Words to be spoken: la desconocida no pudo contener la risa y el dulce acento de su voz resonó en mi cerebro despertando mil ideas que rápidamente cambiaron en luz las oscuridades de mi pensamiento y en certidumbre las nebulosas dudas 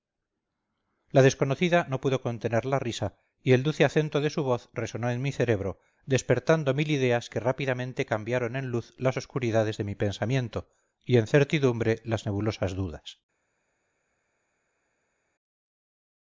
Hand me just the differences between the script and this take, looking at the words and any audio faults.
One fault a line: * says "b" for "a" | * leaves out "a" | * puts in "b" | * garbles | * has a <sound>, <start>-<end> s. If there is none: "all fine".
all fine